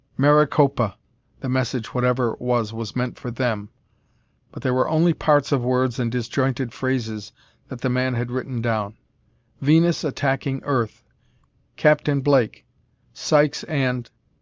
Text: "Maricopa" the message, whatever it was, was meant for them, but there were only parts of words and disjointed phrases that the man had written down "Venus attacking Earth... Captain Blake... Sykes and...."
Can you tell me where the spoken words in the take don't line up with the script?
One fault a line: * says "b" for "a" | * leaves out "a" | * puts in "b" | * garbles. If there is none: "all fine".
all fine